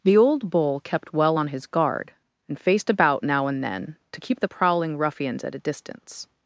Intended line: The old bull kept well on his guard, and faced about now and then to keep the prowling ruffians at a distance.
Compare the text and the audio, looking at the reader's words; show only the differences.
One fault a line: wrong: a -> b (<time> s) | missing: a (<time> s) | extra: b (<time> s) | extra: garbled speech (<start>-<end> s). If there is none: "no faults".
no faults